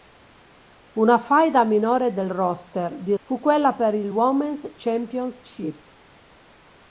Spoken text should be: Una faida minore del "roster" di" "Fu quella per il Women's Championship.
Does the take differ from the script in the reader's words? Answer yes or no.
no